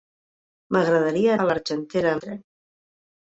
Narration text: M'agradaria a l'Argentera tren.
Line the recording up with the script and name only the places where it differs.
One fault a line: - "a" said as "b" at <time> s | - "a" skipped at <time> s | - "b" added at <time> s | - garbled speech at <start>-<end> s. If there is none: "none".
none